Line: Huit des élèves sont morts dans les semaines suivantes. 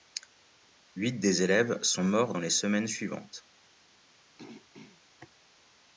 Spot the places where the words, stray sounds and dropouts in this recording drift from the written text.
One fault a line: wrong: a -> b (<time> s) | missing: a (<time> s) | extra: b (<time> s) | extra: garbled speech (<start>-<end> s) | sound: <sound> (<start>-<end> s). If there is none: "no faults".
sound: throat clearing (4.4-5.0 s)